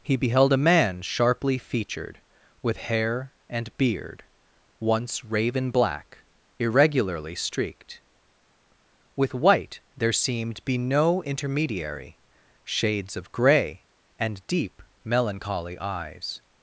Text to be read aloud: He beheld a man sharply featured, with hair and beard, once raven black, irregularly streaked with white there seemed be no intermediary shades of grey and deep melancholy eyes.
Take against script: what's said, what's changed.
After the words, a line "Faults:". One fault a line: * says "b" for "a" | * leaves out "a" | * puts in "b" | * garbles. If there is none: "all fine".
He beheld a man sharply featured, with hair and beard, once raven black, irregularly streaked with white there seemed be no intermediary shades of grey and deep melancholy eyes.
Faults:
all fine